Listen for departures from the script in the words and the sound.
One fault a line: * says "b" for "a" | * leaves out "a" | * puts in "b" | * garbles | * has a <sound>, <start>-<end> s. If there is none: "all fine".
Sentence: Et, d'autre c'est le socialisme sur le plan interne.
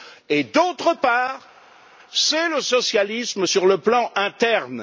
* puts in "part"